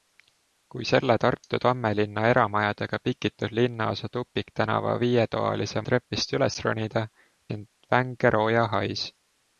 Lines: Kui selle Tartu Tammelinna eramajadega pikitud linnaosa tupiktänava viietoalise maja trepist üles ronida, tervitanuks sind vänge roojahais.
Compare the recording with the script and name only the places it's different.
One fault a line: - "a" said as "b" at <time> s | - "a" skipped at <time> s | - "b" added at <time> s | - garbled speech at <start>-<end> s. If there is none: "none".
- "maja" skipped at 5.8 s
- "tervitanuks" skipped at 7.0 s